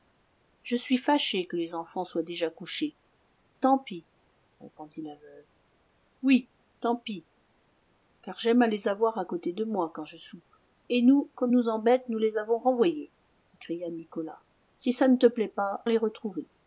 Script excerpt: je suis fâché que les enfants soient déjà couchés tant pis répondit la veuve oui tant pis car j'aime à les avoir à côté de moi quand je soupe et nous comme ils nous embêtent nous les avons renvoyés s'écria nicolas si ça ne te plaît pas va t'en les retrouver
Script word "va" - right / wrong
wrong